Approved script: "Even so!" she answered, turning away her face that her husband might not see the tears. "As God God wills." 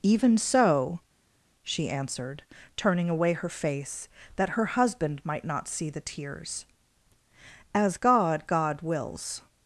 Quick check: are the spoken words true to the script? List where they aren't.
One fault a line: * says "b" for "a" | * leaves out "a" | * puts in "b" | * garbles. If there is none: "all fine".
all fine